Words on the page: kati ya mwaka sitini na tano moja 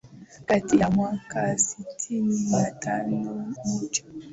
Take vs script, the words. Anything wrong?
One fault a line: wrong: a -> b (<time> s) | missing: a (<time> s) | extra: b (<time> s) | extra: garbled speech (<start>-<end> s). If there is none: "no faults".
no faults